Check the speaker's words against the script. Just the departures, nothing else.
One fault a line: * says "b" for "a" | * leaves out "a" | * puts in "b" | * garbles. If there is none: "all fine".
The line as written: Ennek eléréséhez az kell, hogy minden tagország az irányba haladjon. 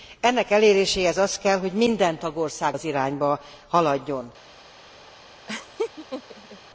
all fine